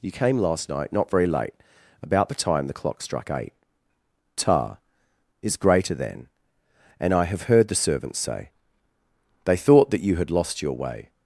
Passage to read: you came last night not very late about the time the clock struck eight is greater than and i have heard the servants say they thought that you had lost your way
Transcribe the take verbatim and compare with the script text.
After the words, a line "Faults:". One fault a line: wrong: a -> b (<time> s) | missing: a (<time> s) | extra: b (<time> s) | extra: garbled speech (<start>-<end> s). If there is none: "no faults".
you came last night not very late about the time the clock struck eight ta is greater than and i have heard the servants say they thought that you had lost your way
Faults:
extra: ta (4.3 s)